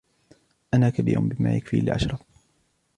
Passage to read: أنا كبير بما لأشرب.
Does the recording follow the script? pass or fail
fail